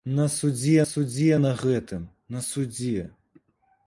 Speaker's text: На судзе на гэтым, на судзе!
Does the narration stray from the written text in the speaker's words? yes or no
yes